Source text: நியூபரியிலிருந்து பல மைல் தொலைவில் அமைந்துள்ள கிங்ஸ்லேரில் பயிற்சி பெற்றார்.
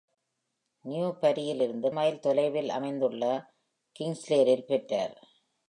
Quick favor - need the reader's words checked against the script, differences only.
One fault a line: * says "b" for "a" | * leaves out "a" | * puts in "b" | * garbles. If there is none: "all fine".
* leaves out "பல"
* leaves out "பயிற்சி"